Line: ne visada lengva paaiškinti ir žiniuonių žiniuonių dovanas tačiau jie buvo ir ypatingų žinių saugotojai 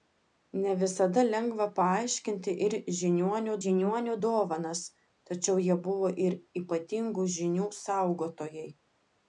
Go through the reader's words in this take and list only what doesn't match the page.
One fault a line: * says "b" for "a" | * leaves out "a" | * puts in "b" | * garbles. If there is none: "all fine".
all fine